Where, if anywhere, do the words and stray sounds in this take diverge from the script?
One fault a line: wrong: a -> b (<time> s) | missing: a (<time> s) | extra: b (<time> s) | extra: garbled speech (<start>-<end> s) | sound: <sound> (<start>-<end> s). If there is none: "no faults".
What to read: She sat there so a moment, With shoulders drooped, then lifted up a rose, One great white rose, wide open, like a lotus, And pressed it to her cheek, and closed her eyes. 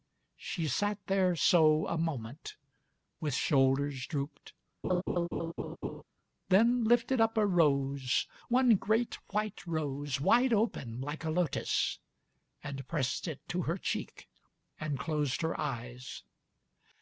sound: laugh (4.8-6.0 s)